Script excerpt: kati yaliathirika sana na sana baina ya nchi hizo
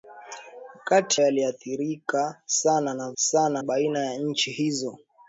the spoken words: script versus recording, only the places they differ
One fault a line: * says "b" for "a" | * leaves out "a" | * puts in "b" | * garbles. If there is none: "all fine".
all fine